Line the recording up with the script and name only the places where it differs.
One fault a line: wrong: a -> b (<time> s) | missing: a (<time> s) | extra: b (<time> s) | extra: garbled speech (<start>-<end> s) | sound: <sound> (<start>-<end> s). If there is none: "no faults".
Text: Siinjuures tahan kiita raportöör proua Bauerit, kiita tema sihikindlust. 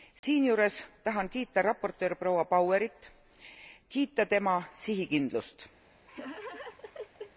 sound: dropout (0.2-0.2 s)
sound: laugh (6.1-7.3 s)